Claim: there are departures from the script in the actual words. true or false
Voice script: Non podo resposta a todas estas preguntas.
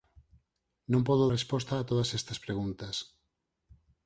false